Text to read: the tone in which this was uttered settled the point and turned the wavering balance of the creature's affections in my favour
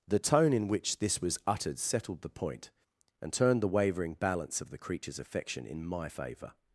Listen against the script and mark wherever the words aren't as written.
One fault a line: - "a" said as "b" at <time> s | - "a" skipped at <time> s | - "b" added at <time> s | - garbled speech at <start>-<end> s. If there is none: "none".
- "affections" said as "affection" at 5.2 s